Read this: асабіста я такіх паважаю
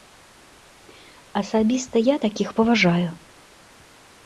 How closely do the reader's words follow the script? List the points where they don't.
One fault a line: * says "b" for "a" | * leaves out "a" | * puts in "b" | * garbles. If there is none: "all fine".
all fine